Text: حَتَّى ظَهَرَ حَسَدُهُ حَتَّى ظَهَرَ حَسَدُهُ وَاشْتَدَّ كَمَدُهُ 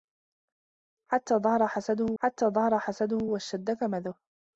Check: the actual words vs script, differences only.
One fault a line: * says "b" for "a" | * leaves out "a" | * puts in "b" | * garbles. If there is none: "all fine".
all fine